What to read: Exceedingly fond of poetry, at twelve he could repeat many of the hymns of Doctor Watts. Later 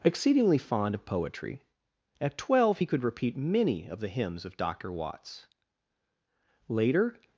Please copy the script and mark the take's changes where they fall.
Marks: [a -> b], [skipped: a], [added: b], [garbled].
Exceedingly fond of poetry, at twelve he could repeat many of the hymns of Doctor Watts. Later